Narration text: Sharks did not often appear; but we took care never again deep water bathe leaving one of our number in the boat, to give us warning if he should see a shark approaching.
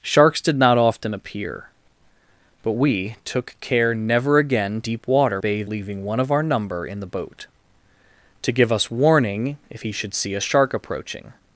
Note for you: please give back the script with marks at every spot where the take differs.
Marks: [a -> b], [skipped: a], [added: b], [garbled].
Sharks did not often appear; but we took care never again deep water bathe leaving one of our number in the boat, to give us warning if he should see a shark approaching.